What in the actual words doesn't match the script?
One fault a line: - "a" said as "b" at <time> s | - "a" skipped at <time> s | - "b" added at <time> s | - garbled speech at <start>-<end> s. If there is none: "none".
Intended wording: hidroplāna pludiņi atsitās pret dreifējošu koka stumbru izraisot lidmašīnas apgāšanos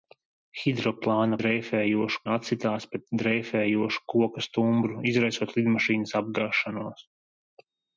- "pludiņi" said as "dreifējošu" at 1.4 s